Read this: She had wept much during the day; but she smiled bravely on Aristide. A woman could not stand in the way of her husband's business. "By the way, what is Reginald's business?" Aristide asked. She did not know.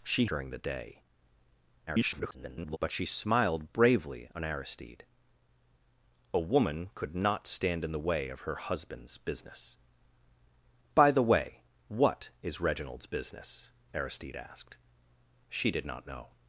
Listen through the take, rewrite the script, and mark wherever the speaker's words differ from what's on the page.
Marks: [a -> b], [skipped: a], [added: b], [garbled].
She [skipped: had wept much] during the day; [garbled] but she smiled bravely on Aristide. A woman could not stand in the way of her husband's business. "By the way, what is Reginald's business?" Aristide asked. She did not know.